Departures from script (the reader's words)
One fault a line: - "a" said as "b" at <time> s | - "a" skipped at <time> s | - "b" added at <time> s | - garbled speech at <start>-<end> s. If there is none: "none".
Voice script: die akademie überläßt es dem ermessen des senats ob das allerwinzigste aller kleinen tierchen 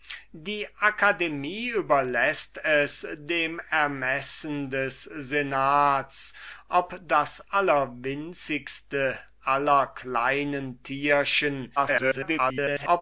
- garbled speech at 11.8-13.0 s